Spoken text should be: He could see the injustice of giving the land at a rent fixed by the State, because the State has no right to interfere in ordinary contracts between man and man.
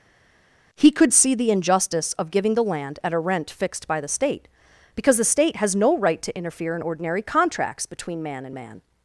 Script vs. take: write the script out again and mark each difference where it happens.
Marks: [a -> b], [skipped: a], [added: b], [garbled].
He could see the injustice of giving the land at a rent fixed by the State, because the State has no right to interfere in ordinary contracts between man and man.